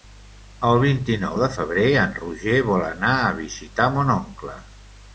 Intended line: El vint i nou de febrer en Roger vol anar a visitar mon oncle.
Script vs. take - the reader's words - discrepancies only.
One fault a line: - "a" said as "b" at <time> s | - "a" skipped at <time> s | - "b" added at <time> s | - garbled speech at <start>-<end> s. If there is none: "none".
none